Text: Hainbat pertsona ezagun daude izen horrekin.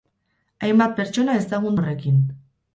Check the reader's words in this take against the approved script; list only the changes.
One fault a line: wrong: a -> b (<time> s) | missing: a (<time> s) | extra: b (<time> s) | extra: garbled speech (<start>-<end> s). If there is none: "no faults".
missing: daude izen (1.8 s)